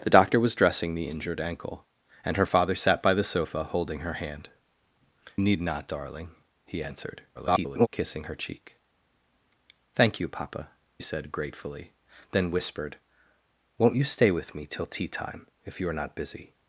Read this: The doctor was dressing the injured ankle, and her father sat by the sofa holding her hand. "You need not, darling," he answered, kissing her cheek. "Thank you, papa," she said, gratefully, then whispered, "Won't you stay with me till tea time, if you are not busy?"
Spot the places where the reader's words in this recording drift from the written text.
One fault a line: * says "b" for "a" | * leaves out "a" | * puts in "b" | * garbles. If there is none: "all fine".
* leaves out "You"
* garbles
* leaves out "she"